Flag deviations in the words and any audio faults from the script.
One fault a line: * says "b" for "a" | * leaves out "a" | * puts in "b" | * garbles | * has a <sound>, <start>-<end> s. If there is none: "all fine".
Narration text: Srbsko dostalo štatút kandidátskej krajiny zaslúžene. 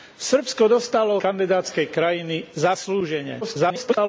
* leaves out "štatút"
* garbles